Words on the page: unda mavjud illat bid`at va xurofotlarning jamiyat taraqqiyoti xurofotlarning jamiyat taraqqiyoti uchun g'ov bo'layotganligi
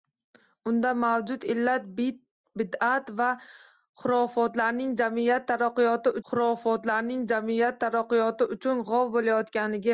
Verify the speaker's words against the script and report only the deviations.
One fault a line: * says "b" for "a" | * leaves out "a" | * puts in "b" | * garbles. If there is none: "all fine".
all fine